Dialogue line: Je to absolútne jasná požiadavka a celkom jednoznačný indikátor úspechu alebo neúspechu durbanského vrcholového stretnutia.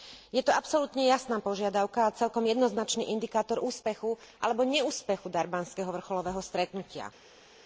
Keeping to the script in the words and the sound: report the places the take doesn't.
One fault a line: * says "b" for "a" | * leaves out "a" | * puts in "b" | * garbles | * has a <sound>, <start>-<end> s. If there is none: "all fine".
all fine